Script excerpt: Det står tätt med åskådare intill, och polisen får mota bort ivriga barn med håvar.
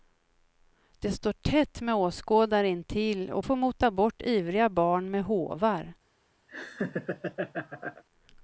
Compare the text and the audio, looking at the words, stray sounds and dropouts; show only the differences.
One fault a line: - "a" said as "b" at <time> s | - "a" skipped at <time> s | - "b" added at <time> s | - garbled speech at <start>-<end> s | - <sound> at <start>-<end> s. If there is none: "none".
- "polisen" skipped at 3.5 s
- laugh at 6.5-8.0 s